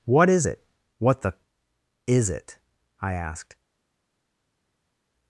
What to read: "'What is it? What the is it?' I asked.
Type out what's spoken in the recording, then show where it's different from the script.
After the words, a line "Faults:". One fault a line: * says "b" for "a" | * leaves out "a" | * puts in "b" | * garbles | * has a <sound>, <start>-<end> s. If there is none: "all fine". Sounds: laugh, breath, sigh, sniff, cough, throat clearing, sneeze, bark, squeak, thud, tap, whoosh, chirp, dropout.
"'What is it? What the is it?' I asked.
Faults:
all fine